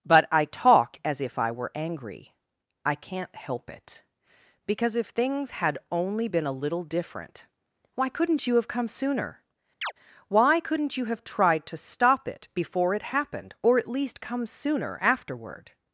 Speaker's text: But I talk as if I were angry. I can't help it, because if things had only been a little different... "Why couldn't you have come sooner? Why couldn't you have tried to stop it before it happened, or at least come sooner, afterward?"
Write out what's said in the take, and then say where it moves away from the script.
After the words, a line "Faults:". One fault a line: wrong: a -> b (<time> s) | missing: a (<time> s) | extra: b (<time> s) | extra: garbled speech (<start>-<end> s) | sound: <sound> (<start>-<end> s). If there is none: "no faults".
But I talk as if I were angry. I can't help it, because if things had only been a little different... "Why couldn't you have come sooner? Why couldn't you have tried to stop it before it happened, or at least come sooner, afterward?"
Faults:
sound: chirp (9.8-9.9 s)